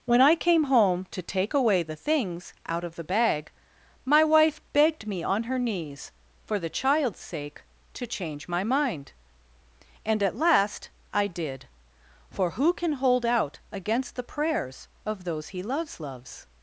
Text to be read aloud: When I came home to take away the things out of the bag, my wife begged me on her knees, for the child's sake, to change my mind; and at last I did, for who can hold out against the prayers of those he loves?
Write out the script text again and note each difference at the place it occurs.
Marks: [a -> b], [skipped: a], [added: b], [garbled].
When I came home to take away the things out of the bag, my wife begged me on her knees, for the child's sake, to change my mind; and at last I did, for who can hold out against the prayers of those he loves? [added: loves]